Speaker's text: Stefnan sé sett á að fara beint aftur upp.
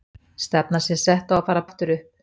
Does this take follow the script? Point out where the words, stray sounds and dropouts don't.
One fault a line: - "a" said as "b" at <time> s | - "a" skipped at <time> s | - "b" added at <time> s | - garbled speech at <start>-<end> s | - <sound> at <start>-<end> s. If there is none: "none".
- "beint" skipped at 1.7 s